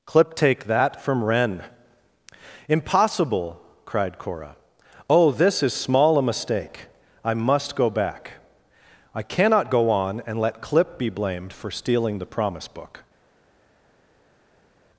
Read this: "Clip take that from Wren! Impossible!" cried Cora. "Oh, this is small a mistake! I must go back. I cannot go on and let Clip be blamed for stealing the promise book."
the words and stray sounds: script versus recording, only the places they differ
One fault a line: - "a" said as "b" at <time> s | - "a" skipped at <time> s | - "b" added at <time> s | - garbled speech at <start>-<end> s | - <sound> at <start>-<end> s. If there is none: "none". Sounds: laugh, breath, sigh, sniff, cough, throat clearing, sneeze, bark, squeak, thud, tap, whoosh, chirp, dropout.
none